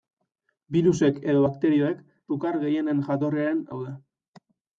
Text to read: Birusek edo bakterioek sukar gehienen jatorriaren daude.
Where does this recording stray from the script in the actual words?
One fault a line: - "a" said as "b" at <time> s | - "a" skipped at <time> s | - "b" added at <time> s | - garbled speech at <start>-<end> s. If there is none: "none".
none